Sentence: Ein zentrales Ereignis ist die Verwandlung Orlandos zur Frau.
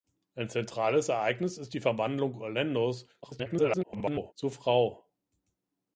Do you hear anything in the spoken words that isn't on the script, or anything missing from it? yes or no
yes